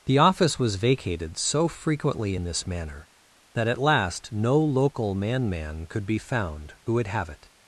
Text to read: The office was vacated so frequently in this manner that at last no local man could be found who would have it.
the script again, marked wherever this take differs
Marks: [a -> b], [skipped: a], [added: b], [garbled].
The office was vacated so frequently in this manner that at last no local man [added: man] could be found who would have it.